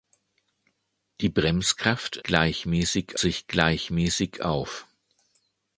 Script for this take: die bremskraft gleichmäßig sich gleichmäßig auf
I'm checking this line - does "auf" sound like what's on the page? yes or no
yes